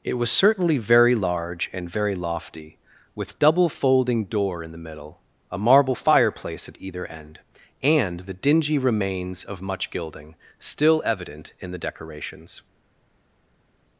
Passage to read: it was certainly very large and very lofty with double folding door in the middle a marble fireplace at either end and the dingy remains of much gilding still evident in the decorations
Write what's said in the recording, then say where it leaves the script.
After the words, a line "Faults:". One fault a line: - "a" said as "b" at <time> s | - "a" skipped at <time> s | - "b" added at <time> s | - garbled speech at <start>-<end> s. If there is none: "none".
it was certainly very large and very lofty with double folding door in the middle a marble fireplace at either end and the dingy remains of much gilding still evident in the decorations
Faults:
none